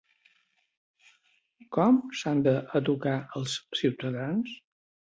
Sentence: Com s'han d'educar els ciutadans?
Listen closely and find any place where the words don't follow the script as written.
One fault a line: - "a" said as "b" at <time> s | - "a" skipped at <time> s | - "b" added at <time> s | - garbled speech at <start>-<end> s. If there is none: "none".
none